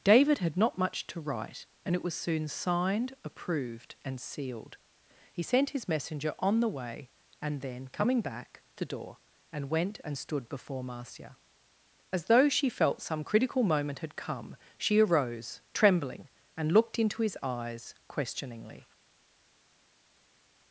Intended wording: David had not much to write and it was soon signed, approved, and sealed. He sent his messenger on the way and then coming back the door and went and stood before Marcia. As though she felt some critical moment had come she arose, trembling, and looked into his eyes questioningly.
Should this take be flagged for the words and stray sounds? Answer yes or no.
no